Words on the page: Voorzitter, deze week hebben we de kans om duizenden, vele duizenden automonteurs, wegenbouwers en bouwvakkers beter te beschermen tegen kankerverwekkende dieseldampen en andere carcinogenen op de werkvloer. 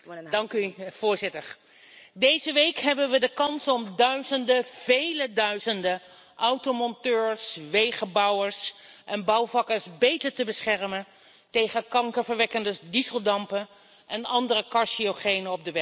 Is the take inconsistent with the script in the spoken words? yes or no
no